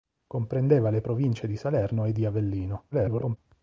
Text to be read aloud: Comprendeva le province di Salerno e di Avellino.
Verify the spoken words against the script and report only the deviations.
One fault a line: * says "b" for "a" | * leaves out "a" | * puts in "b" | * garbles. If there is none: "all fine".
* garbles